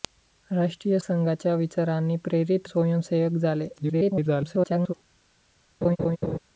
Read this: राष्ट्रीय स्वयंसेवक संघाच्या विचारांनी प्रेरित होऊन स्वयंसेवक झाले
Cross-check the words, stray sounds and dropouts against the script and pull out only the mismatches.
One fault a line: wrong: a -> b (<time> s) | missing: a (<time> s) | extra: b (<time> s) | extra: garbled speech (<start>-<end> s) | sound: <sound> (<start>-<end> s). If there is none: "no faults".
missing: स्वयंसेवक (1.0 s)
missing: होऊन (2.7 s)
extra: garbled speech (3.8-4.9 s)
sound: laugh (5.8-6.4 s)